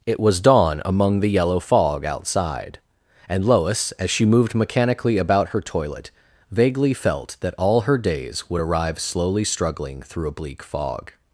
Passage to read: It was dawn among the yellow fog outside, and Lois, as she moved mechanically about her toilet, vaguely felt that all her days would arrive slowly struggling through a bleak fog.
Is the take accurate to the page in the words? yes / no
yes